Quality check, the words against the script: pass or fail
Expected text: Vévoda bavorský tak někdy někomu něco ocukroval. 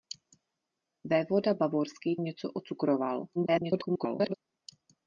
fail